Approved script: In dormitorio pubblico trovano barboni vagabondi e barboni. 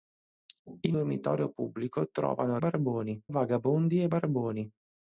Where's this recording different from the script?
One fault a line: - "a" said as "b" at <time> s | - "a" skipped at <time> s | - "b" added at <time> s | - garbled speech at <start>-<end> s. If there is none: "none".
none